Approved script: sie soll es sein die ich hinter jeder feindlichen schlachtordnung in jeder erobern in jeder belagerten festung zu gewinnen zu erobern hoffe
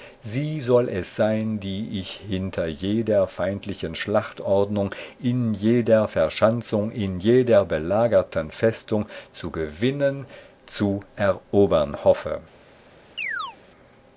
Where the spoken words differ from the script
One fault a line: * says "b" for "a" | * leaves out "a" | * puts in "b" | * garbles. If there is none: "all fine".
* says "verschanzung" for "erobern"